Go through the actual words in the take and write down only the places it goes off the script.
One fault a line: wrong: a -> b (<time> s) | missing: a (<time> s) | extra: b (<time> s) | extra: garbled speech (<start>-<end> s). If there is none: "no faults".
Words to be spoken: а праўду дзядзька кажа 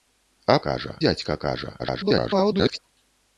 wrong: праўду -> кажа (0.7 s)
extra: garbled speech (1.8-2.8 s)